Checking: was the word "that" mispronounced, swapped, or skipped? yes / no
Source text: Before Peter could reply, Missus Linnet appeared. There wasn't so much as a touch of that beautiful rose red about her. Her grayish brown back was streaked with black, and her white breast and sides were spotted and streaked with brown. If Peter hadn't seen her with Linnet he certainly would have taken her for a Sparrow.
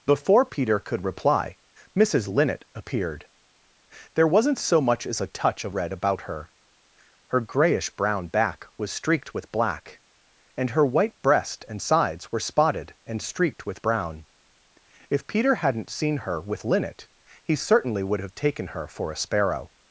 yes